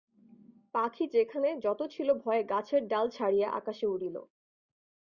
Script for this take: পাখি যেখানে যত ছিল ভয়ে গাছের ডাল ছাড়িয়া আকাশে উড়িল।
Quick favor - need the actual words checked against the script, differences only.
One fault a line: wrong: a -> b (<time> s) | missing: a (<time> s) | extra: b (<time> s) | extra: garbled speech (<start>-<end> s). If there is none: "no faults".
no faults